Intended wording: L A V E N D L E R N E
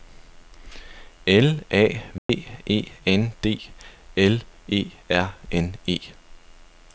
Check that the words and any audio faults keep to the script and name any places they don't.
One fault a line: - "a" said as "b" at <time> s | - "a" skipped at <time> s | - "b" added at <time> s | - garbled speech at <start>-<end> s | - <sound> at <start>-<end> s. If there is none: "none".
- dropout at 2.2-2.3 s